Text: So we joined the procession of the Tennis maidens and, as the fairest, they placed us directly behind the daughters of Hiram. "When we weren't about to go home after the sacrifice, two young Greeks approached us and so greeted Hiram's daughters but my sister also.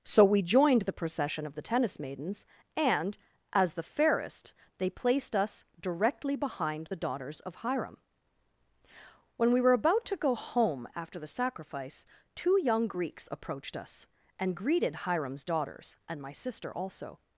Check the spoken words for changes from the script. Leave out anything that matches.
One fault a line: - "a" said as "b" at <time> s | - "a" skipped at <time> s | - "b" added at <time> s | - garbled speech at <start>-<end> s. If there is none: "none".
- "weren't" said as "were" at 9.6 s
- "so" skipped at 14.6 s
- "but" said as "and" at 16.1 s